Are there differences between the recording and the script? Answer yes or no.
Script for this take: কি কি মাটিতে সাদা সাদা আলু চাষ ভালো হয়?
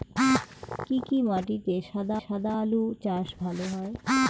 no